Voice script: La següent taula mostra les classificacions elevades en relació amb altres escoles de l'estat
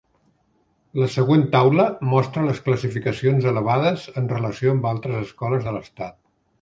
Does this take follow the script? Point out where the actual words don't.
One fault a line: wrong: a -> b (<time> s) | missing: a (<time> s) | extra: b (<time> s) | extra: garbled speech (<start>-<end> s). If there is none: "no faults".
no faults